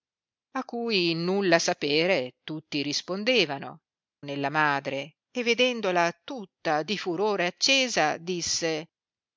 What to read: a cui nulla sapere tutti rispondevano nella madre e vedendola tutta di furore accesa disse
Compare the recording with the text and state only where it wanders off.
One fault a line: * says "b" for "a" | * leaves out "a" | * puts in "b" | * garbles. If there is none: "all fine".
all fine